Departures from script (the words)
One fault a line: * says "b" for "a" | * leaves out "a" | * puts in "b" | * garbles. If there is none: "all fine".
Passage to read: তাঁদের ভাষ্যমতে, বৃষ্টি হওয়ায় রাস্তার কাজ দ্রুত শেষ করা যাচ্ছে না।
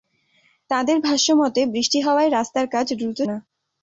* leaves out "শেষ করা যাচ্ছে"